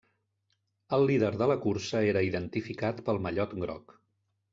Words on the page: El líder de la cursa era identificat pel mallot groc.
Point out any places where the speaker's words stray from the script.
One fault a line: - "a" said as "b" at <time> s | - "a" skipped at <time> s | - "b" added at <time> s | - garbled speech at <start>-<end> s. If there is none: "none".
none